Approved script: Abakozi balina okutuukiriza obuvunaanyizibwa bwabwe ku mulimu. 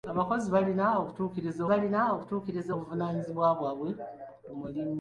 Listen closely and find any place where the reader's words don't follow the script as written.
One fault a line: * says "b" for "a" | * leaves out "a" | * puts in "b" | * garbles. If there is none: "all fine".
* puts in "balina okutuukiriza"